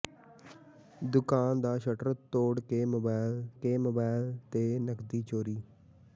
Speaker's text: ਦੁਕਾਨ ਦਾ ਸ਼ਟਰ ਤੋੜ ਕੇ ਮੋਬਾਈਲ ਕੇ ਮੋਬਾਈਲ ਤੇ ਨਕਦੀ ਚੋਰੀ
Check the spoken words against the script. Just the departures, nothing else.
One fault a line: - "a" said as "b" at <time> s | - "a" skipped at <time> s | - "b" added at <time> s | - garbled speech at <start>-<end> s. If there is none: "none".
none